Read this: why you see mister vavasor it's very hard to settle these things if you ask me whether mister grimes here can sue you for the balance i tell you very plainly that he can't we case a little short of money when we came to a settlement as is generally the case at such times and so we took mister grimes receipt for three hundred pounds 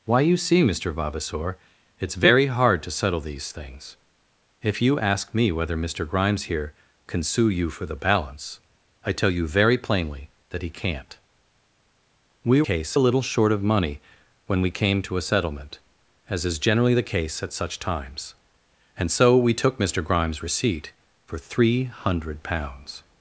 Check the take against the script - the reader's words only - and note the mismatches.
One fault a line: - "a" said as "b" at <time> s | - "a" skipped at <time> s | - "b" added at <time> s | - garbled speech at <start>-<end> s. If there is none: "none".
none